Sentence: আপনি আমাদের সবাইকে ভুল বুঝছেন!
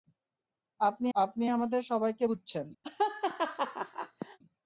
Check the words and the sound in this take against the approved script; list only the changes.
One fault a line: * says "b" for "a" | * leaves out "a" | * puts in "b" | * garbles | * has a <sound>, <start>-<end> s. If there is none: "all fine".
* puts in "আপনি"
* leaves out "ভুল"
* has a laugh, 2.8-4.4 s